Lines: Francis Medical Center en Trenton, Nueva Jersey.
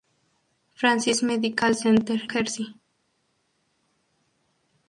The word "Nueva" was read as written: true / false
false